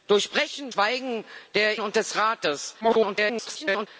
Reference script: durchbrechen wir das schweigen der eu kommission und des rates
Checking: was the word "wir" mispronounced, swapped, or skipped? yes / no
yes